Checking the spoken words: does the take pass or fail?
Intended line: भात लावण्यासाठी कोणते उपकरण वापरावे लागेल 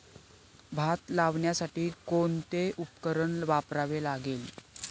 pass